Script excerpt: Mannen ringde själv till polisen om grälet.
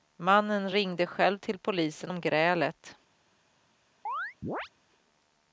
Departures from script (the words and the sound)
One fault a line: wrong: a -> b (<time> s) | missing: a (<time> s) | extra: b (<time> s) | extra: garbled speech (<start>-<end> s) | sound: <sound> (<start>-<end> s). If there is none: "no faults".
sound: chirp (4.1-4.7 s)